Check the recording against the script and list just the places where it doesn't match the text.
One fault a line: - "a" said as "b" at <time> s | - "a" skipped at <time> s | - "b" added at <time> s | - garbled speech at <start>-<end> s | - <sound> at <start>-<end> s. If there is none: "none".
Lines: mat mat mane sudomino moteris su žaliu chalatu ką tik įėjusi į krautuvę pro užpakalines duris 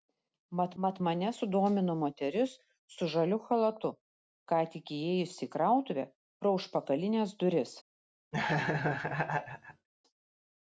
- laugh at 8.3-9.9 s